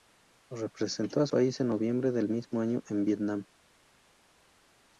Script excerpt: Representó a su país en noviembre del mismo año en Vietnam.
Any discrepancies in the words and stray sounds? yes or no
yes